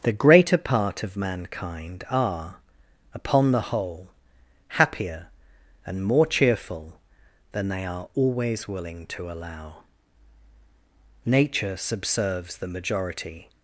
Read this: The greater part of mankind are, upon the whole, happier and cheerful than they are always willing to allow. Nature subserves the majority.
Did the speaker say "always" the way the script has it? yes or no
yes